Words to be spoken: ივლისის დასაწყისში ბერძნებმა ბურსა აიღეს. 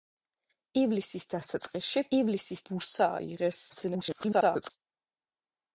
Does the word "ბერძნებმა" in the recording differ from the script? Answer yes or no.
yes